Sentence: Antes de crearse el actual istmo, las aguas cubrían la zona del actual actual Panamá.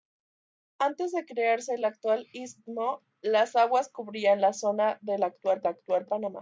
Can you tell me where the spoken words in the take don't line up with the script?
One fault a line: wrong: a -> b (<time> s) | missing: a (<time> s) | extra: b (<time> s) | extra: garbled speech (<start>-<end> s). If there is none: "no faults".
no faults